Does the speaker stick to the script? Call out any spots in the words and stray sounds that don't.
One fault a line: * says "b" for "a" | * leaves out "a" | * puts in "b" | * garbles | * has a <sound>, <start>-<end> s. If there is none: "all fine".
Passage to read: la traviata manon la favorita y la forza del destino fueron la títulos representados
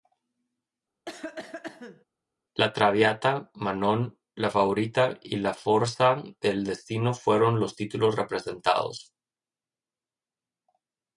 * has a cough, 1.0-2.0 s
* says "los" for "la"